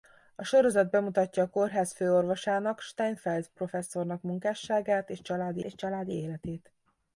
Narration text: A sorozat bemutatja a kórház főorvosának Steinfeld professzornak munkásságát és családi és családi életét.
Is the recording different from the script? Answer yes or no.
no